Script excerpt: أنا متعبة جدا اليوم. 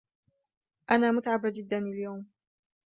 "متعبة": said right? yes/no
yes